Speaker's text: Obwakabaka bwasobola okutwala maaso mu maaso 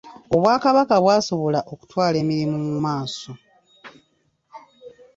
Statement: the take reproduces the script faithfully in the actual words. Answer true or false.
false